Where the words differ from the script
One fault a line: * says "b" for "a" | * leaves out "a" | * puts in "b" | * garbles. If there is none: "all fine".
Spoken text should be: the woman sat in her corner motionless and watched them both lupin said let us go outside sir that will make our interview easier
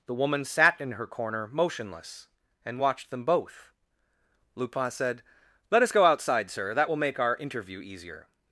all fine